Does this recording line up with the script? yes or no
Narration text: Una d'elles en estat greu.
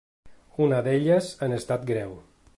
yes